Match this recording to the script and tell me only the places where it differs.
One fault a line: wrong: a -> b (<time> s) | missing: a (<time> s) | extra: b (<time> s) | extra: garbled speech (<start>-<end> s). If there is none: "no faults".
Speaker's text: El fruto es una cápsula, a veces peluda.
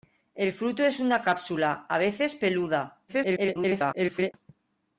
extra: garbled speech (3.1-4.3 s)